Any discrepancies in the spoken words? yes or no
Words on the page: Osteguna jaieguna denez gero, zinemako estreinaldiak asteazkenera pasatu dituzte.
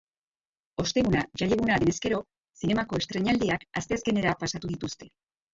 no